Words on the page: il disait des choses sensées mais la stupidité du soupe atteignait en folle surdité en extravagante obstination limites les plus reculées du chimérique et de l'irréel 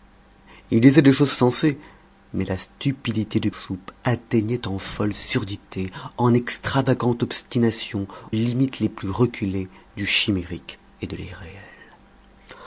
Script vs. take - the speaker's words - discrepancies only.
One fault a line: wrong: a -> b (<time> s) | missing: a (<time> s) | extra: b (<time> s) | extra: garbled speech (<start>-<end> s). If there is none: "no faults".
no faults